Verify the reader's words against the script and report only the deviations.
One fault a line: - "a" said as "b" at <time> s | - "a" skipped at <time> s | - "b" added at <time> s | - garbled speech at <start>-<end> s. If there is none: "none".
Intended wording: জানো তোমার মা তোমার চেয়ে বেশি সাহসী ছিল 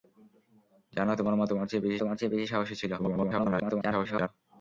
- "তোমার চেয়ে বেশি" added at 2.0 s
- garbled speech at 3.0-4.3 s